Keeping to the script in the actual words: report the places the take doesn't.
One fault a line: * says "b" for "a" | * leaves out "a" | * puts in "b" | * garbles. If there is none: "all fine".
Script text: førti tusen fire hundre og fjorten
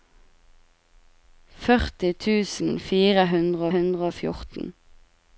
* puts in "hundre"